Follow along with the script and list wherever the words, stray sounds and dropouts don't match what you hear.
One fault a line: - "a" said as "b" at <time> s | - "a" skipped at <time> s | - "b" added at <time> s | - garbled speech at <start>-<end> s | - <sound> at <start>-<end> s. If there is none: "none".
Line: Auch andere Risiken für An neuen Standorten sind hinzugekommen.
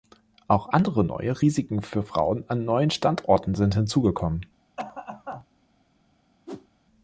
- "neue" added at 1.0 s
- "Frauen" added at 2.0 s
- cough at 4.8-5.5 s
- whoosh at 6.5-6.7 s